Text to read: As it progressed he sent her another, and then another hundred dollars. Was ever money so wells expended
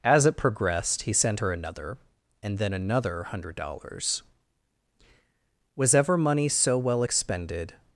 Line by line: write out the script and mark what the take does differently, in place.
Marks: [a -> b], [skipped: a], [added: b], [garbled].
As it progressed he sent her another, and then another hundred dollars. Was ever money so [wells -> well] expended